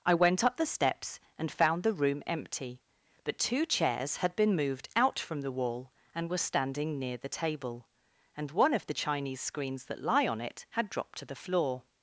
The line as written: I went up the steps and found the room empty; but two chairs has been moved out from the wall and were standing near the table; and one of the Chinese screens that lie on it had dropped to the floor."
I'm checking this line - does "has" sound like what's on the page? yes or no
no